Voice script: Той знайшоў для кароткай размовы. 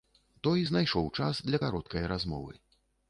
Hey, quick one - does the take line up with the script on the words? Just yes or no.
no